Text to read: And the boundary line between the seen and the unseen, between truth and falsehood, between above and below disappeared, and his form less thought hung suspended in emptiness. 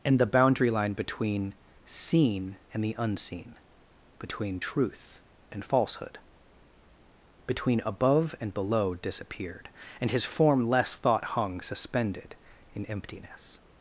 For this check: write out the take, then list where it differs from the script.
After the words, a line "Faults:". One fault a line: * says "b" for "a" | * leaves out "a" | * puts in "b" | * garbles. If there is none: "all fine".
And the boundary line between seen and the unseen, between truth and falsehood, between above and below disappeared, and his form less thought hung suspended in emptiness.
Faults:
* leaves out "the"